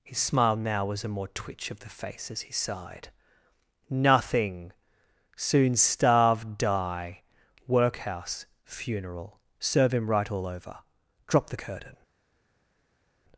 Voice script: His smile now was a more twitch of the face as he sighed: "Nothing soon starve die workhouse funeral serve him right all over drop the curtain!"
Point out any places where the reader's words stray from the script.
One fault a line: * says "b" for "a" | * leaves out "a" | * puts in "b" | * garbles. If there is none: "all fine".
all fine